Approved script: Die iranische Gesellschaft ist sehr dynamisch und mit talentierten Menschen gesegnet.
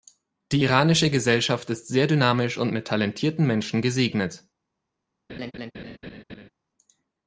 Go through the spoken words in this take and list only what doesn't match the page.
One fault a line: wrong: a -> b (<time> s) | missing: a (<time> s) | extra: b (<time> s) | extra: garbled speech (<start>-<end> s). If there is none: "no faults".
no faults